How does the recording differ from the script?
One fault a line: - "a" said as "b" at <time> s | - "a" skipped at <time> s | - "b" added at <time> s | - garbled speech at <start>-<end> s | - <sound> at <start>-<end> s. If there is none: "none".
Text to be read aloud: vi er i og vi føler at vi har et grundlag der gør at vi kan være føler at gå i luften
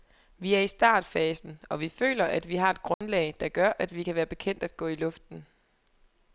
- "startfasen" added at 0.7 s
- dropout at 2.9-3.0 s
- "føler" said as "bekendt" at 4.3 s